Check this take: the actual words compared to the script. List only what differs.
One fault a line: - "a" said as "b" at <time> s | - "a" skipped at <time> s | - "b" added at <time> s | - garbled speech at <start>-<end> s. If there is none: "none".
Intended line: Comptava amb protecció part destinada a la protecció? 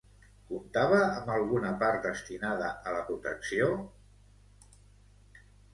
- "protecció" said as "alguna" at 1.3 s